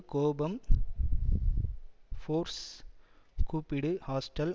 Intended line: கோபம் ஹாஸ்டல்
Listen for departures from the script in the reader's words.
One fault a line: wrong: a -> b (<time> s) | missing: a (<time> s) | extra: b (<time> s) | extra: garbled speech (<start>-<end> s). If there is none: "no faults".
extra: ஃபோர்ஸ் கூப்பிடு (2.2 s)